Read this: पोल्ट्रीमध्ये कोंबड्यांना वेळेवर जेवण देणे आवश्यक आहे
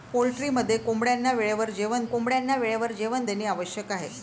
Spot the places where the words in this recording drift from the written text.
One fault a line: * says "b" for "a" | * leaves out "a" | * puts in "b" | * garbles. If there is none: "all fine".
* puts in "कोंबड्यांना वेळेवर जेवण"